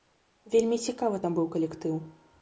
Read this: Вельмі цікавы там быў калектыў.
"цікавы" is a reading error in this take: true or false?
false